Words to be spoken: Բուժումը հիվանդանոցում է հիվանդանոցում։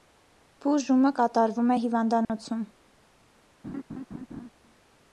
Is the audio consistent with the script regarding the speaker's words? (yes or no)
no